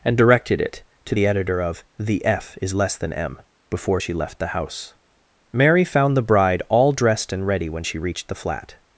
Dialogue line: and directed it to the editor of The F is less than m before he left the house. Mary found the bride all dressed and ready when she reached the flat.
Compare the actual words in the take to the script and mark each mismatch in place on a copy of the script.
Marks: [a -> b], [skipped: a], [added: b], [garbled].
and directed it to the editor of The F is less than m before [he -> she] left the house. Mary found the bride all dressed and ready when she reached the flat.